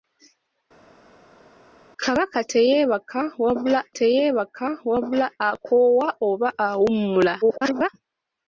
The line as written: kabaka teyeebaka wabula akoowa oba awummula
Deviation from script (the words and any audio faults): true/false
true